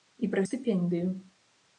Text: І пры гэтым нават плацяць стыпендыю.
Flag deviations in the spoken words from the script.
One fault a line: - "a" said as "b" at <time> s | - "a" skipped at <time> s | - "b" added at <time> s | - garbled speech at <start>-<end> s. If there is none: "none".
- "гэтым нават плацяць" skipped at 0.4 s